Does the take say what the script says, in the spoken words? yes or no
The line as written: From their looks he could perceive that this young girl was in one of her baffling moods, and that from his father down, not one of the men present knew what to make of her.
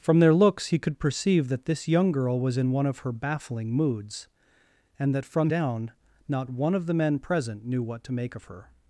no